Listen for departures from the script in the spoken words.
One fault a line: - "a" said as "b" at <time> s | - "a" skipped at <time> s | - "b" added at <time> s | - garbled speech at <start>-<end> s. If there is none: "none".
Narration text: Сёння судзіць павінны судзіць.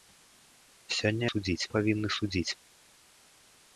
none